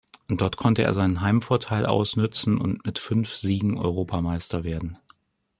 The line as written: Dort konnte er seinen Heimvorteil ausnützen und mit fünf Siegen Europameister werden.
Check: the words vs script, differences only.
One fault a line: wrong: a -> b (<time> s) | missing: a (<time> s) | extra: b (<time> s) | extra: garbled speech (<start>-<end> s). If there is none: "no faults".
no faults